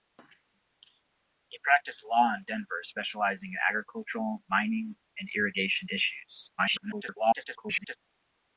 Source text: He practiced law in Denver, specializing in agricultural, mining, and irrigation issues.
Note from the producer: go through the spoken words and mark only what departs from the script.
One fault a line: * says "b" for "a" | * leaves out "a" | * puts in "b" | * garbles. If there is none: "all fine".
* garbles